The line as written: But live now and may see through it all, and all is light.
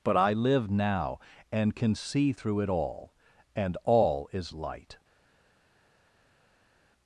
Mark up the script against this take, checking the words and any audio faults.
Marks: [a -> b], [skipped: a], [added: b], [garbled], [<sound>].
But [added: I] live now and [may -> can] see through it all, and all is light.